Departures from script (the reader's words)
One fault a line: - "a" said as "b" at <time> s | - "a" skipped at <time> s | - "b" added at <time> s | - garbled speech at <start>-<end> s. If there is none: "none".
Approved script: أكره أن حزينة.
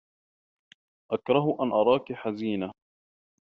- "أراكِ" added at 1.6 s